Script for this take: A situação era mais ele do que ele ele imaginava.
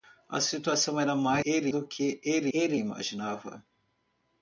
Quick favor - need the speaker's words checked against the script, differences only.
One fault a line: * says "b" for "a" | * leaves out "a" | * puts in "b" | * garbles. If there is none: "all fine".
all fine